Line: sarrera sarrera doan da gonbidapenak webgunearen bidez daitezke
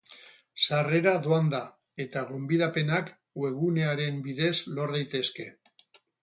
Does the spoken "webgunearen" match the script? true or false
true